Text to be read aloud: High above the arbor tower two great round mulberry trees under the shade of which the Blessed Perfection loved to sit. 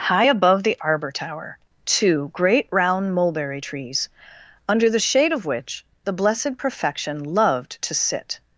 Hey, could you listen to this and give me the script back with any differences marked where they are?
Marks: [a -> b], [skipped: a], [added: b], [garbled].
High above the arbor tower two great round mulberry trees under the shade of which the Blessed Perfection loved to sit.